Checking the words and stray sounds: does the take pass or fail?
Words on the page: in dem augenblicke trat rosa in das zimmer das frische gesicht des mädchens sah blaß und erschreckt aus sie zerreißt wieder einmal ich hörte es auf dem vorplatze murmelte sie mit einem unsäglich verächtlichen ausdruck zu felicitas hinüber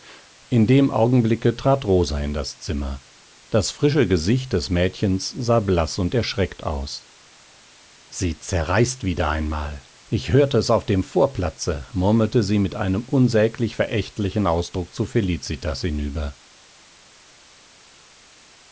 pass